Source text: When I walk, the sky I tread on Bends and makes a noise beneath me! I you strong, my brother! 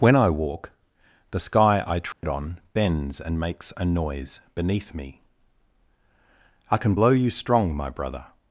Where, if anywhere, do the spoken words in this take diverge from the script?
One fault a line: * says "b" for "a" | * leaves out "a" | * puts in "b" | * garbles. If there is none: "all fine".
* puts in "can blow"